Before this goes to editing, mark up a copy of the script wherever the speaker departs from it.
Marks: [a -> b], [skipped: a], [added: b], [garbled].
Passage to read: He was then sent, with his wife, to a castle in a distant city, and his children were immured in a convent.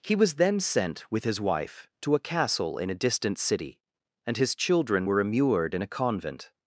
He was then sent, with his wife, to a castle in a distant city, and his children were immured in a convent.